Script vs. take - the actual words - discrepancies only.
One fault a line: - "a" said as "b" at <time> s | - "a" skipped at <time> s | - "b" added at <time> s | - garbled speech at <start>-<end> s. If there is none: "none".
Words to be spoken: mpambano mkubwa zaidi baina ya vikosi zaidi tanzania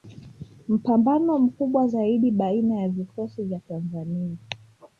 - "zaidi" said as "vya" at 3.4 s